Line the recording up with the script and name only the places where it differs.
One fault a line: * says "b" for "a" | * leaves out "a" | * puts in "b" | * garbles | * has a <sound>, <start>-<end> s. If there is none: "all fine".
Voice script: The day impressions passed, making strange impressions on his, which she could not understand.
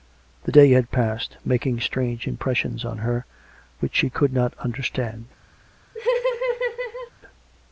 * says "had" for "impressions"
* says "her" for "his"
* has a laugh, 5.9-7.1 s